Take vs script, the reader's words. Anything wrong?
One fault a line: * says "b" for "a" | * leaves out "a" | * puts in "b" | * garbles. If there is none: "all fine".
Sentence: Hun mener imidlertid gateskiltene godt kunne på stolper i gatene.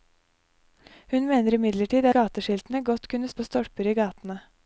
all fine